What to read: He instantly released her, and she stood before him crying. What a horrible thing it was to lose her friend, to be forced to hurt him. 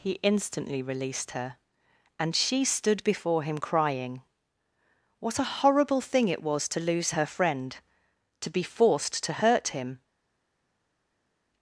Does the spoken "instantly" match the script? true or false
true